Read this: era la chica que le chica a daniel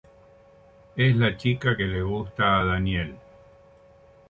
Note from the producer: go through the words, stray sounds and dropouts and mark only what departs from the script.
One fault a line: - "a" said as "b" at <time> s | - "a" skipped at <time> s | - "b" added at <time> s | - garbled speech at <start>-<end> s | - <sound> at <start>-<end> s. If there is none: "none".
- "era" said as "es" at 0.9 s
- "chica" said as "gusta" at 2.0 s